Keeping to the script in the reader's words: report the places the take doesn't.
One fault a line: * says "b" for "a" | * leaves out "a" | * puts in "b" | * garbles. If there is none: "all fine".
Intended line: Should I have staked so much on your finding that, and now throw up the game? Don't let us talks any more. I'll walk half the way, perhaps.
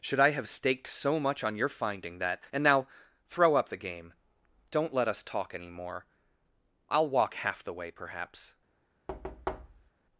* says "talk" for "talks"